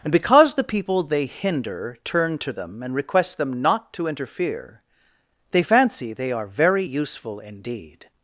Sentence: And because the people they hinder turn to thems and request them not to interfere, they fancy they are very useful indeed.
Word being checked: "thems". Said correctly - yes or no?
no